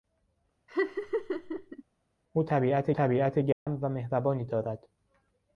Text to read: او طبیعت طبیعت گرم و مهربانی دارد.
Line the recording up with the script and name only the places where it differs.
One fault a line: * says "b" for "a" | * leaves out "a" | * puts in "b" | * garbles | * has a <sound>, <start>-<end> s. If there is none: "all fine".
* has a laugh, 0.7-1.8 s
* has a dropout, 3.5-3.7 s